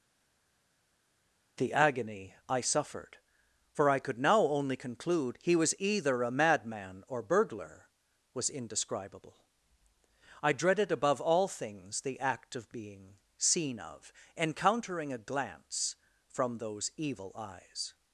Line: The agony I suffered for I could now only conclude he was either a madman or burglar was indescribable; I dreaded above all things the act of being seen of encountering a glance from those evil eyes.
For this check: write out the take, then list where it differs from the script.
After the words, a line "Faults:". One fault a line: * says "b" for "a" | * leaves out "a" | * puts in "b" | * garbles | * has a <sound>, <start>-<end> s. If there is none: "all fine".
The agony I suffered for I could now only conclude he was either a madman or burglar was indescribable; I dreaded above all things the act of being seen of encountering a glance from those evil eyes.
Faults:
all fine